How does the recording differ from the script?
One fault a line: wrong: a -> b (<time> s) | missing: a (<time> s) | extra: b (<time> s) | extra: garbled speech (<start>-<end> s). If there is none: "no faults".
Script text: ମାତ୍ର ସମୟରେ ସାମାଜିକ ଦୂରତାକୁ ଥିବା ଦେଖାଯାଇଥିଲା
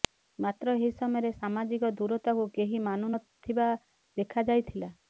extra: ଏହି (0.8 s)
extra: କେହି ମାନୁ ନ (2.6 s)